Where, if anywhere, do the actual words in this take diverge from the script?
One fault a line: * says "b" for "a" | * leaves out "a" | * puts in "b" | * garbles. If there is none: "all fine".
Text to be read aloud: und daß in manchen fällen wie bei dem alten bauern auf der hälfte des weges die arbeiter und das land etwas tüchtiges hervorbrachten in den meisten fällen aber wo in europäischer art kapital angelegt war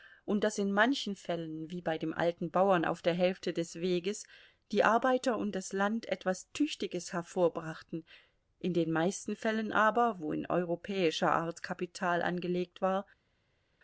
all fine